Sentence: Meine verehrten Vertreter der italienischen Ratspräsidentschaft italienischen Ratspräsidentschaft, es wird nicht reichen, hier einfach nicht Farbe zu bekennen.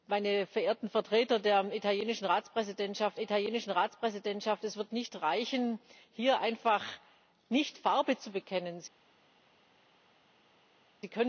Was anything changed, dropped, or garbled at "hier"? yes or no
no